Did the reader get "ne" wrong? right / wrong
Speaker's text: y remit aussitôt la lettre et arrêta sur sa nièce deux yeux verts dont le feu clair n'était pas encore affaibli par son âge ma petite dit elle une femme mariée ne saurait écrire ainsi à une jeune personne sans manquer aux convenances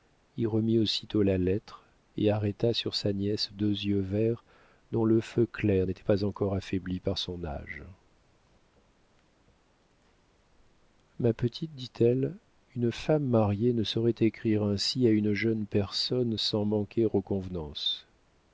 right